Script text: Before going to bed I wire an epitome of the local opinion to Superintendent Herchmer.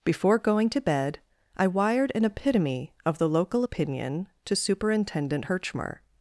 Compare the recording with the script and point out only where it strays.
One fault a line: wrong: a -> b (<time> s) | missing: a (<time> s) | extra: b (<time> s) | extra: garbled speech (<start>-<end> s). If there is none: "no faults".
wrong: wire -> wired (1.7 s)